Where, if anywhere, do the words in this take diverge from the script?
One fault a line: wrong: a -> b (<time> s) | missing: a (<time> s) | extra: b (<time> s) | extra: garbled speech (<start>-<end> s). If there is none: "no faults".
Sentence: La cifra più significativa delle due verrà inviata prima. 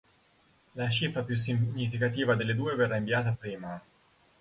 no faults